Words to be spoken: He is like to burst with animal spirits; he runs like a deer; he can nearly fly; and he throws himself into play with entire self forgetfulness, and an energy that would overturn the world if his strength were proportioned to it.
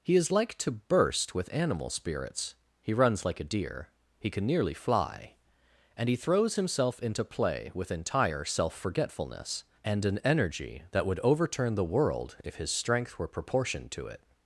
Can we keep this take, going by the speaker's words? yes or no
yes